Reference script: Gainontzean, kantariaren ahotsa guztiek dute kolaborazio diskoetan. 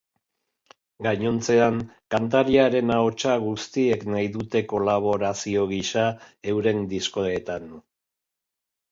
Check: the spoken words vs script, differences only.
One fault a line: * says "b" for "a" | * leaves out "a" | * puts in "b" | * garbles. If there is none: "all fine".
* puts in "nahi"
* puts in "gisa euren"